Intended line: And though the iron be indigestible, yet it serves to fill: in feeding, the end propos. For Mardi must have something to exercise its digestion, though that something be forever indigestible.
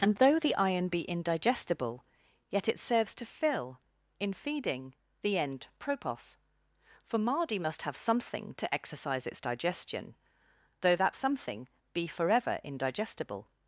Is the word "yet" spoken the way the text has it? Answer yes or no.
yes